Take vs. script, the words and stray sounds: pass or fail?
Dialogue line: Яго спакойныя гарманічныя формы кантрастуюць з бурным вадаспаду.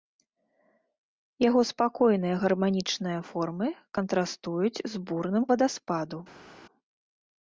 pass